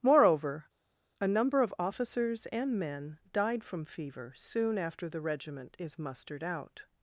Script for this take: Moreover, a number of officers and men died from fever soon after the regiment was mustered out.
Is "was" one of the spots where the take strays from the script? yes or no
yes